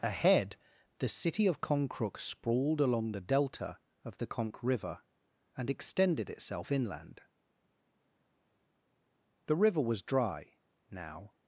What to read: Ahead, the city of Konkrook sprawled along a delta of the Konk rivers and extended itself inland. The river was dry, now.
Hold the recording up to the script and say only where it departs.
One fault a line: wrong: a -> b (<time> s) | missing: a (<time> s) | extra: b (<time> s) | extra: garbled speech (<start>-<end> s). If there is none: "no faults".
wrong: a -> the (3.1 s)
wrong: rivers -> river (4.6 s)